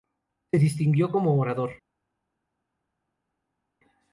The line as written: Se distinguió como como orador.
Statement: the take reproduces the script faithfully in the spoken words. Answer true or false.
false